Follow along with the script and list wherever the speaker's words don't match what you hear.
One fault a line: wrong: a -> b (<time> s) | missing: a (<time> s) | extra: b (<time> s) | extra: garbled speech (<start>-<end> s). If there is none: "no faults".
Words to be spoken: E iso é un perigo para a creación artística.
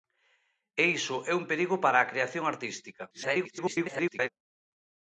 extra: garbled speech (3.1-4.3 s)